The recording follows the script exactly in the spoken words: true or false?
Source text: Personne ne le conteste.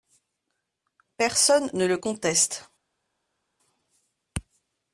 true